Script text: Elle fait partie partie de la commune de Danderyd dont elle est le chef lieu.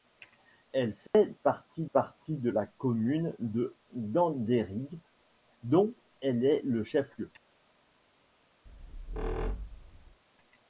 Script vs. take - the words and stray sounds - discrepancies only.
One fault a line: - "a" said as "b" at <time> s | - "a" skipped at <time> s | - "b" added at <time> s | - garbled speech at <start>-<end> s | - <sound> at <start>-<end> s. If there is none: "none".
- dropout at 1.1-1.1 s
- squeak at 8.7-10.2 s